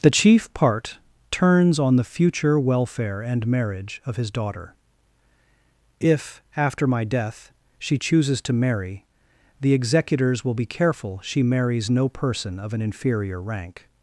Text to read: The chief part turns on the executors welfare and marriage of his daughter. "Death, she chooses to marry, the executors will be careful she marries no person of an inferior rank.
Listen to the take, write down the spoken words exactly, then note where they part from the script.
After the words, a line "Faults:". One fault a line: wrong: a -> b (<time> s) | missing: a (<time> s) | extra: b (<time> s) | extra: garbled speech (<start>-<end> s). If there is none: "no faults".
The chief part turns on the future welfare and marriage of his daughter. "If, after my death, she chooses to marry, the executors will be careful she marries no person of an inferior rank.
Faults:
wrong: executors -> future (2.0 s)
extra: If after my (6.0 s)